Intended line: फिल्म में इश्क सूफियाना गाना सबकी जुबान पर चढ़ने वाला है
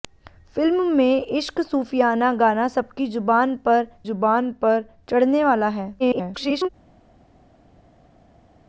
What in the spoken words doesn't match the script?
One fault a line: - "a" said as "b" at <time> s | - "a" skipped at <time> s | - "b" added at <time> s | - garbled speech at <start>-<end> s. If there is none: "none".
- "जुबान पर" added at 4.0 s
- garbled speech at 6.0-6.7 s